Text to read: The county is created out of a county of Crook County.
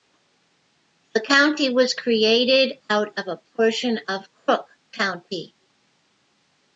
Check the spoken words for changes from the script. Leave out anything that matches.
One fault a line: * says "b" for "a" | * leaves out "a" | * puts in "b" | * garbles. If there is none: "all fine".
* says "was" for "is"
* says "portion" for "county"